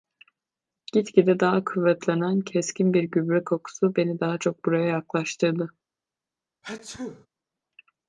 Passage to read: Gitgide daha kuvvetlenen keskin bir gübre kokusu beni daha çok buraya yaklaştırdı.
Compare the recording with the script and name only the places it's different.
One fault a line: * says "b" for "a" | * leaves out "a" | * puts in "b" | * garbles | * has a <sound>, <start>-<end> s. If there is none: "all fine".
* has a sneeze, 6.6-7.3 s